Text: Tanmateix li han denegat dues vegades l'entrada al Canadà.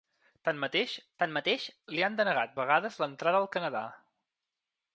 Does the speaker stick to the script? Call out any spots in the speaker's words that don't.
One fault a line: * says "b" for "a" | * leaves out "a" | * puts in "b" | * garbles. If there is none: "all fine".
* puts in "tanmateix"
* leaves out "dues"